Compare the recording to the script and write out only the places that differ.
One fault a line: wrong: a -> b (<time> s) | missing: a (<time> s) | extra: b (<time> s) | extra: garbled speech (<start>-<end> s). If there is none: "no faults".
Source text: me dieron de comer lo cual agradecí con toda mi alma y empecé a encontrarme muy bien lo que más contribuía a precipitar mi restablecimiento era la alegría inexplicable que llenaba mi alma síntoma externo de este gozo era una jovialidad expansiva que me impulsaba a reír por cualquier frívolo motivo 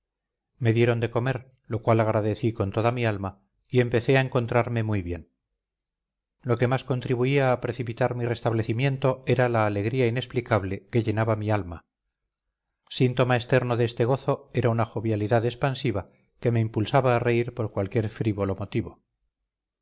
no faults